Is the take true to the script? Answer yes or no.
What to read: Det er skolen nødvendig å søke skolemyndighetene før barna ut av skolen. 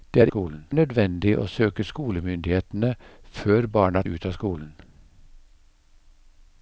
yes